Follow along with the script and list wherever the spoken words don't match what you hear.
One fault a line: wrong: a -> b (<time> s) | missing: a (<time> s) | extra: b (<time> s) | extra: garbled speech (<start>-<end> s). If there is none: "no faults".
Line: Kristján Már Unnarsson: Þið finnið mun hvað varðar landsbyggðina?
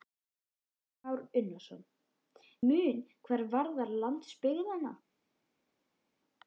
missing: Þið finnið (1.8 s)